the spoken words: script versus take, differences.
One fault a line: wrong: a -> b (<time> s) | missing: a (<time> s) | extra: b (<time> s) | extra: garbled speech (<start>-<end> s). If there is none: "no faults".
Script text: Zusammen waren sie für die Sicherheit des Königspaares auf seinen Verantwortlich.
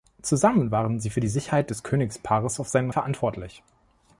no faults